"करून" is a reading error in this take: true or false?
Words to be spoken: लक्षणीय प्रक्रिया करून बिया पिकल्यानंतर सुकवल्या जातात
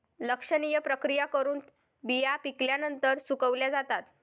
false